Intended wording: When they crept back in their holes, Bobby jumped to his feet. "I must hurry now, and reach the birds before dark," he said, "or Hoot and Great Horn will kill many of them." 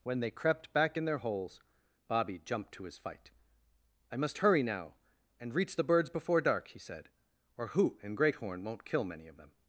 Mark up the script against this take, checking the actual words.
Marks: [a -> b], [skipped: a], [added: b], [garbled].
When they crept back in their holes, Bobby jumped to his [feet. -> fight] "I must hurry now, and reach the birds before dark," he said, "or Hoot and Great Horn [will -> won't] kill many of them."